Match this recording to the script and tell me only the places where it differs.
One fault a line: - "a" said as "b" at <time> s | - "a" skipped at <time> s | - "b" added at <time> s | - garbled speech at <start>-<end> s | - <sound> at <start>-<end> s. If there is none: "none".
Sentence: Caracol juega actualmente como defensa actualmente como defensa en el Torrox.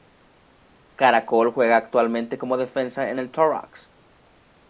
- "actualmente como defensa" skipped at 3.1 s